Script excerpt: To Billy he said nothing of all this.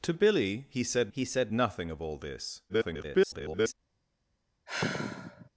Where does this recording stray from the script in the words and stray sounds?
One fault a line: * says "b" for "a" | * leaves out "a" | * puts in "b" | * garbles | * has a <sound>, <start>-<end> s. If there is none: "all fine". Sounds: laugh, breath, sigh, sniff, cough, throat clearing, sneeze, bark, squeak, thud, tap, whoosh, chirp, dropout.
* puts in "he said"
* garbles
* has a sigh, 4.7-5.5 s